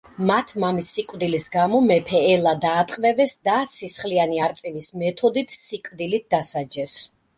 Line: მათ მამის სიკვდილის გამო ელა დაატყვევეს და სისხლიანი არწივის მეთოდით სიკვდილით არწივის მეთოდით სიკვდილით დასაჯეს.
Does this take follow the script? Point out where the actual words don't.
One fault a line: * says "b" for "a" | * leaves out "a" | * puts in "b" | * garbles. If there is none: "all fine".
* puts in "მეფე"
* leaves out "არწივის მეთოდით სიკვდილით"